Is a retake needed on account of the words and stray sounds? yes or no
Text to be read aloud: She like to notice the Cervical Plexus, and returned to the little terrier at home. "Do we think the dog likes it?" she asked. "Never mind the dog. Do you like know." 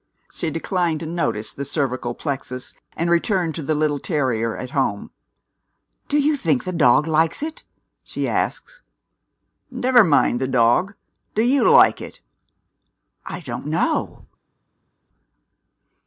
yes